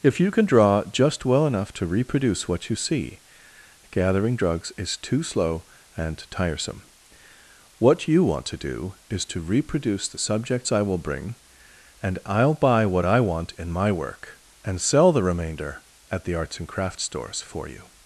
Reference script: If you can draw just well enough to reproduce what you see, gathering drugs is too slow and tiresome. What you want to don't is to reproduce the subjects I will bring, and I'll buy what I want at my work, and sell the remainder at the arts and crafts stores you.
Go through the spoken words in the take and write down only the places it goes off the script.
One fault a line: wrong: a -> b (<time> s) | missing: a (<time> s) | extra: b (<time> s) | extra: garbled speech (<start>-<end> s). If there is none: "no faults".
wrong: don't -> do (8.6 s)
wrong: at -> in (13.5 s)
extra: for (17.4 s)